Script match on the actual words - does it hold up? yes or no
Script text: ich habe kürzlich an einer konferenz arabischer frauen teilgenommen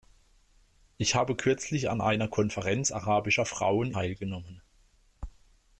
yes